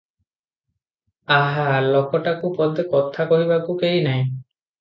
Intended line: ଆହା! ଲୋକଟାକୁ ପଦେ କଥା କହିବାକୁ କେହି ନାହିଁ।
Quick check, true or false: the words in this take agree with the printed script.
true